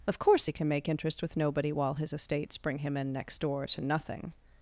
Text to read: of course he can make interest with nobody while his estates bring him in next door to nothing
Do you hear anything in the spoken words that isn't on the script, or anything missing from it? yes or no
no